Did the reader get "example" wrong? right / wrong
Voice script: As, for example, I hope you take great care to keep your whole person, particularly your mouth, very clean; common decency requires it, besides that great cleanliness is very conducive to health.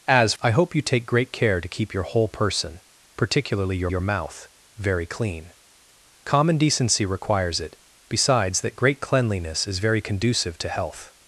wrong